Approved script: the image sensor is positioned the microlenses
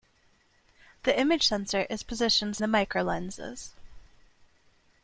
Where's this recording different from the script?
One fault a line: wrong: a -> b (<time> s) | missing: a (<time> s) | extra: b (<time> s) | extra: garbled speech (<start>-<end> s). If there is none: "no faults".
no faults